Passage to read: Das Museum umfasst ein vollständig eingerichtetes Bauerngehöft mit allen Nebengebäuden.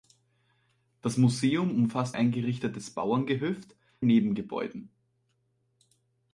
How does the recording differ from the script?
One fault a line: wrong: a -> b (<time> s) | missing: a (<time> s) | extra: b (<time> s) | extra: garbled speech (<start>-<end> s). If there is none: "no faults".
missing: ein vollständig (2.2 s)
missing: mit allen (3.7 s)